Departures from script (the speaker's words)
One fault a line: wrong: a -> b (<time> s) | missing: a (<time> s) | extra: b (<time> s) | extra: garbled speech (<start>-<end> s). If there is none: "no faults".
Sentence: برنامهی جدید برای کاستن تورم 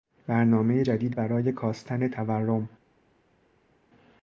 no faults